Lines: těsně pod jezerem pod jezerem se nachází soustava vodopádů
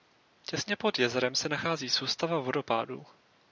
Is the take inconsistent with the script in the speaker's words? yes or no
yes